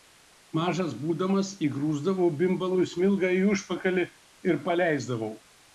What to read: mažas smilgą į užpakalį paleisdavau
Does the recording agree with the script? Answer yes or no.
no